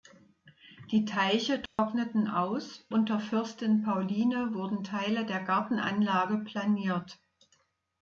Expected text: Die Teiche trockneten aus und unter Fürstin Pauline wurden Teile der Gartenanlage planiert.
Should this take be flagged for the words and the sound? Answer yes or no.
yes